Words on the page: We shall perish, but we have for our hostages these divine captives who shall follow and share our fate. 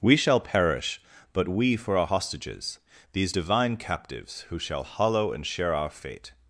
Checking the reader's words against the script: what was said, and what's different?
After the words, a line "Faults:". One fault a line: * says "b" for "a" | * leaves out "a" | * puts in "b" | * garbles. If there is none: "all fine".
We shall perish, but we for our hostages these divine captives who shall hollow and share our fate.
Faults:
* leaves out "have"
* says "hollow" for "follow"